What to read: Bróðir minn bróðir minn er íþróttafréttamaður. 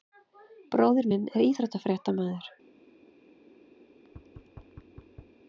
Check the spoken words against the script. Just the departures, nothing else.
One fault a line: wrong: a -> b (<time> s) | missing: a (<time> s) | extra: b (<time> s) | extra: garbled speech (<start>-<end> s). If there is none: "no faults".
missing: bróðir minn (1.3 s)